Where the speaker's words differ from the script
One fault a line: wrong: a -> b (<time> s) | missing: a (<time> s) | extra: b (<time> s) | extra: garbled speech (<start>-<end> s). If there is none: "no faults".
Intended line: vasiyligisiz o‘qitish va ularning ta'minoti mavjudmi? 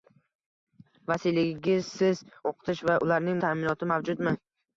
no faults